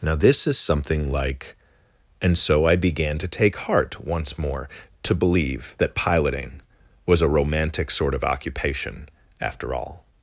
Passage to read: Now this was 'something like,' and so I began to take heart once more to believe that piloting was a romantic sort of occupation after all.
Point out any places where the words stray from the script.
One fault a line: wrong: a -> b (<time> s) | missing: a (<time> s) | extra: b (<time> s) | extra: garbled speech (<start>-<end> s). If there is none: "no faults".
wrong: was -> is (0.5 s)